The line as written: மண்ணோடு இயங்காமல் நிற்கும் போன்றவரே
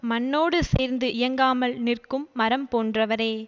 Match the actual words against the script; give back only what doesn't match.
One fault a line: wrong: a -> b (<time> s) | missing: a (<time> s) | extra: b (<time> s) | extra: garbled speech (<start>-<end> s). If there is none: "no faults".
extra: சேர்ந்து (0.6 s)
extra: மரம் (2.3 s)